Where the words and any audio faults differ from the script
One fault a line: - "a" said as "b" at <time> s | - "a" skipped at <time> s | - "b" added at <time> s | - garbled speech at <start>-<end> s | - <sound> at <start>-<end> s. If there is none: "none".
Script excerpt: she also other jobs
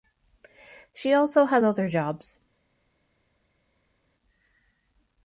- "has" added at 1.4 s